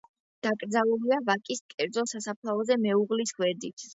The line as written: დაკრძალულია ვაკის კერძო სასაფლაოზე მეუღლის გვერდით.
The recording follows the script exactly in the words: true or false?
true